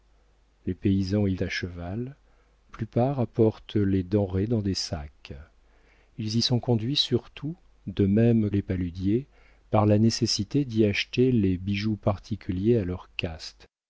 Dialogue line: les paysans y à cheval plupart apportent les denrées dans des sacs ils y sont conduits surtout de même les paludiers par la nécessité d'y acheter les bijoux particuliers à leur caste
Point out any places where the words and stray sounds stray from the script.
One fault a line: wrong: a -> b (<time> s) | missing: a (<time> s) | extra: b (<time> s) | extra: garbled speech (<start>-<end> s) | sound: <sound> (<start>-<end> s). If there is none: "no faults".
no faults